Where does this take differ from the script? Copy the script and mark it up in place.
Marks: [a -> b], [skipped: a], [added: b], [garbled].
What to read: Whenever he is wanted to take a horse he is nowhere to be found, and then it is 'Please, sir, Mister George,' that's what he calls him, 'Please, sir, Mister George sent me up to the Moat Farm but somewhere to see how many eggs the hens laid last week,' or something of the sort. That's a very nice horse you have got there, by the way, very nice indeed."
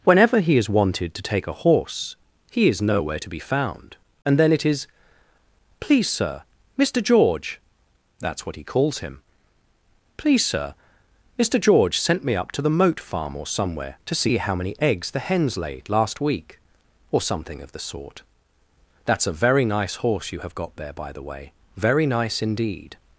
Whenever he is wanted to take a horse he is nowhere to be found, and then it is 'Please, sir, Mister George,' that's what he calls him, 'Please, sir, Mister George sent me up to the Moat Farm [but -> or] somewhere to see how many eggs the hens laid last week,' or something of the sort. That's a very nice horse you have got there, by the way, very nice indeed."